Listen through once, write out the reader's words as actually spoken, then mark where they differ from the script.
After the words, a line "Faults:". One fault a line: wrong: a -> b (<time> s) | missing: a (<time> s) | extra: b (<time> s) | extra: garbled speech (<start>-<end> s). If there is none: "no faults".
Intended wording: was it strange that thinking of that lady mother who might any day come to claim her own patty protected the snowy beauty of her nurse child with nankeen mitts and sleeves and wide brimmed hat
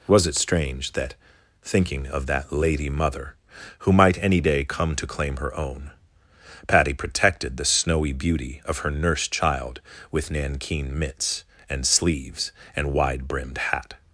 was it strange that thinking of that lady mother who might any day come to claim her own patty protected the snowy beauty of her nurse child with nankeen mitts and sleeves and wide brimmed hat
Faults:
no faults